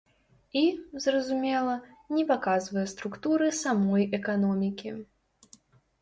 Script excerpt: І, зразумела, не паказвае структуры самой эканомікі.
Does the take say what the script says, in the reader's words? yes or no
yes